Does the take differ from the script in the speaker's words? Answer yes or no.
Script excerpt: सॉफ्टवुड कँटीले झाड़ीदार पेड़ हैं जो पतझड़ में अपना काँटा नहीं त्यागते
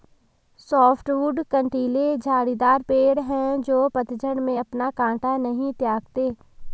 no